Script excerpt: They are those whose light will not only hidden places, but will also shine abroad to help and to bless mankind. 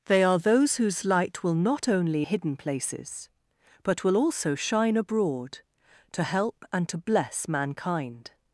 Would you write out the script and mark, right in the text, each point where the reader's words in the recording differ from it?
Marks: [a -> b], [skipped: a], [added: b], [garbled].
They are those whose light will not only hidden places, but will also shine abroad to help and to bless mankind.